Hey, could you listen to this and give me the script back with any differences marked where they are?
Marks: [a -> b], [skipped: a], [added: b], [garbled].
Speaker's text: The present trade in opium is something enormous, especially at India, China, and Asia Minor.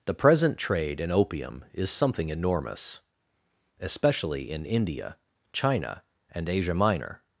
The present trade in opium is something enormous, especially [at -> in] India, China, and Asia Minor.